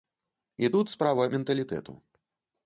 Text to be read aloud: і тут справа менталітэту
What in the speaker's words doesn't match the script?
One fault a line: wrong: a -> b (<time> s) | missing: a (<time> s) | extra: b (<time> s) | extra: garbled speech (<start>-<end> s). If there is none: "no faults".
no faults